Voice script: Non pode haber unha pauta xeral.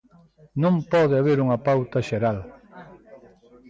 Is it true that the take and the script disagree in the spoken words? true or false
false